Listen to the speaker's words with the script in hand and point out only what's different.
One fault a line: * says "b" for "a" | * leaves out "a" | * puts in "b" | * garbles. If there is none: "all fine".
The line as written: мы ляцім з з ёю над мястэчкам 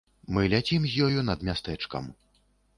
* leaves out "з"